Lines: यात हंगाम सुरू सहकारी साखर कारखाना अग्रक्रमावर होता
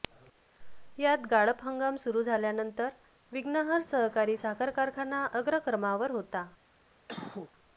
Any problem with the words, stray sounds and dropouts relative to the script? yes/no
yes